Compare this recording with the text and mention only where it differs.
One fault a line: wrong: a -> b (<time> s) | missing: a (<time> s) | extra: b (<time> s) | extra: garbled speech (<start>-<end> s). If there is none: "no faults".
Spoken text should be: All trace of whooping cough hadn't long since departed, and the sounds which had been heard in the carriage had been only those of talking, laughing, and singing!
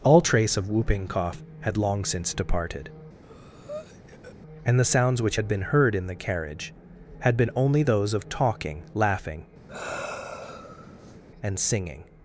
wrong: hadn't -> had (1.6 s)